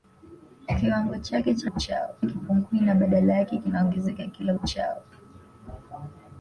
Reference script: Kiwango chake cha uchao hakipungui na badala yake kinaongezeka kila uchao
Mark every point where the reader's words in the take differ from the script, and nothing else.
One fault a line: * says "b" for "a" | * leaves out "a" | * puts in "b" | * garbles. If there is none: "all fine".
all fine